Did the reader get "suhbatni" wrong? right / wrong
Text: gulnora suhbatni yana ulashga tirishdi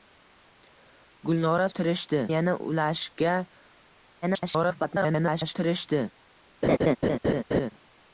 wrong